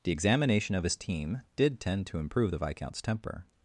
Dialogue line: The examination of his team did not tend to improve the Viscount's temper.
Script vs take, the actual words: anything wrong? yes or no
yes